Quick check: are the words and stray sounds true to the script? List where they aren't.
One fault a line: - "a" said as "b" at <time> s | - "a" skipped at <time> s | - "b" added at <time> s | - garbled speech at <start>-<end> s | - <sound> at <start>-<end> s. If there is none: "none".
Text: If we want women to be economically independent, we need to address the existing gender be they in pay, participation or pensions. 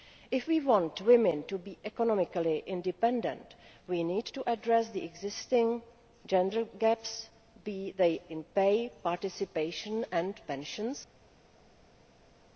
- "gaps" added at 6.8 s